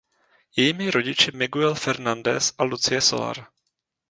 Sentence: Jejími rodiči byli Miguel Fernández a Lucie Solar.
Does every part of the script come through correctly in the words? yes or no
no